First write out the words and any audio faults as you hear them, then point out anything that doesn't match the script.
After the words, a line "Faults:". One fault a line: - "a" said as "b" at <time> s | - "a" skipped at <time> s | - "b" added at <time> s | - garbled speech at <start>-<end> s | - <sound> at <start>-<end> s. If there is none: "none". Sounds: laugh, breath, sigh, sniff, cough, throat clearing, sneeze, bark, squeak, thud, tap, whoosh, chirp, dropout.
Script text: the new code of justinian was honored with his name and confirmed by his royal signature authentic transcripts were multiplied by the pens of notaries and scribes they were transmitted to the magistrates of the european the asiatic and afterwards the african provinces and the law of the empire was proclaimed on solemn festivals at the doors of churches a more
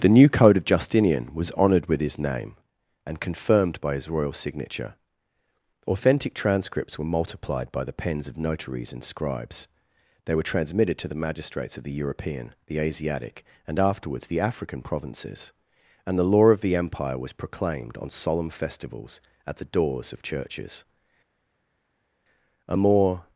the new code of justinian was honored with his name and confirmed by his royal signature authentic transcripts were multiplied by the pens of notaries and scribes they were transmitted to the magistrates of the european the asiatic and afterwards the african provinces and the law of the empire was proclaimed on solemn festivals at the doors of churches a more
Faults:
none